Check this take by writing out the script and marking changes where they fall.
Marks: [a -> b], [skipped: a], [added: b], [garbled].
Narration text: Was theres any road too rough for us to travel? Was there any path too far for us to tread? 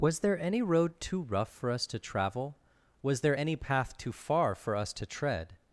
Was [theres -> there] any road too rough for us to travel? Was there any path too far for us to tread?